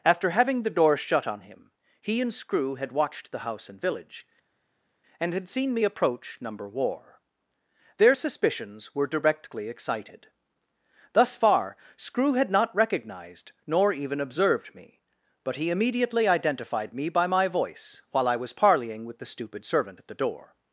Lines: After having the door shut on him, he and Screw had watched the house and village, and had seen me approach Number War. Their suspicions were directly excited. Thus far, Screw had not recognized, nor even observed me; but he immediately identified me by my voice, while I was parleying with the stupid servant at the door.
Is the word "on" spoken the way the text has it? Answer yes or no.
yes